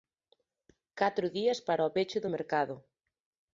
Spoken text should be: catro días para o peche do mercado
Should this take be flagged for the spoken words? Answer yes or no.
no